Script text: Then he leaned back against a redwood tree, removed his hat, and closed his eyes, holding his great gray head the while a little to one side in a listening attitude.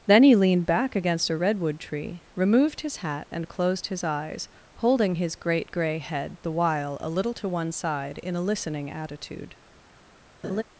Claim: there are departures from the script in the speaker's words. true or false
false